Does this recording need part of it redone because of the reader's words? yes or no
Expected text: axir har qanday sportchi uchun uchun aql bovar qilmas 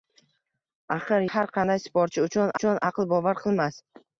no